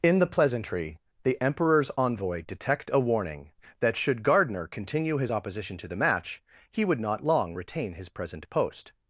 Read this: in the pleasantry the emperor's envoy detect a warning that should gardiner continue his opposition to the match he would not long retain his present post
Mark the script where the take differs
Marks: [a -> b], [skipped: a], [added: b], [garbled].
in the pleasantry the emperor's envoy detect a warning that should gardiner continue his opposition to the match he would not long retain his present post